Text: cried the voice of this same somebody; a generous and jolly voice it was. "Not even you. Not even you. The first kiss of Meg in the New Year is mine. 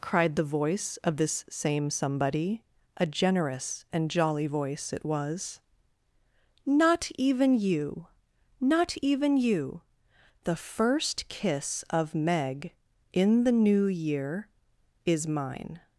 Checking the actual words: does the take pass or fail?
pass